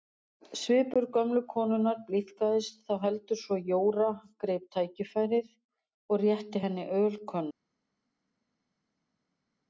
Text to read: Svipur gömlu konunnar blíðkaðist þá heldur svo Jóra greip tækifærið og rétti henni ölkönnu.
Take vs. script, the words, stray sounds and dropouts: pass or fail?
pass